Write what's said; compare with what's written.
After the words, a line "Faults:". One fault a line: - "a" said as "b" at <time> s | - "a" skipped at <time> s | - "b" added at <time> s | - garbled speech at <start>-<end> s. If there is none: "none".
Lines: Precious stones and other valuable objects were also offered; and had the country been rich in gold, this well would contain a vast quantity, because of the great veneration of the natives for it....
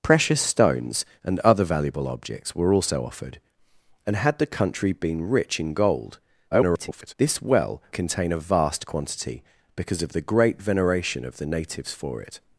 Precious stones and other valuable objects were also offered; and had the country been rich in gold, [garbled] this well contain a vast quantity, because of the great veneration of the natives for it....
Faults:
- garbled speech at 6.5-7.1 s
- "would" skipped at 7.8 s